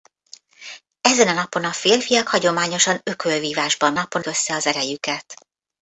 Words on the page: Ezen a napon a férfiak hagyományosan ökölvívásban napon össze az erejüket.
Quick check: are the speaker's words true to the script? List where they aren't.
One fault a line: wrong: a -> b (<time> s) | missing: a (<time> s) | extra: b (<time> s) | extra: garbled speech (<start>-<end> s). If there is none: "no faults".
no faults